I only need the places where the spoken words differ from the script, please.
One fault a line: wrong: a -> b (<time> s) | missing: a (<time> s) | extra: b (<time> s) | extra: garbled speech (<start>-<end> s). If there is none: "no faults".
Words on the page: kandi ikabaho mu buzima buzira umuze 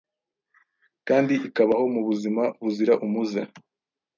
no faults